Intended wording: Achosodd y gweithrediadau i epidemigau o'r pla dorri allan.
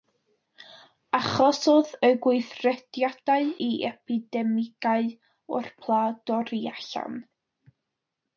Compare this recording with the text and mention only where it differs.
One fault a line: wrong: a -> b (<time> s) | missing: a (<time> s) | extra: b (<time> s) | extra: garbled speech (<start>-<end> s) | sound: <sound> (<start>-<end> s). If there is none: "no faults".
no faults